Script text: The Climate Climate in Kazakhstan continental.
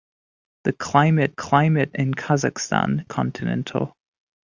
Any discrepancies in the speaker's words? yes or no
no